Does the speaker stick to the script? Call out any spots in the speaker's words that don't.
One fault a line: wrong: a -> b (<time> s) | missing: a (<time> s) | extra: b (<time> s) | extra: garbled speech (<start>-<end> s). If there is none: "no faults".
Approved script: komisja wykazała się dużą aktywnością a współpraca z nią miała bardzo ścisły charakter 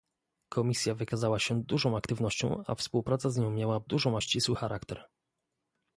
wrong: bardzo -> dużą (3.8 s)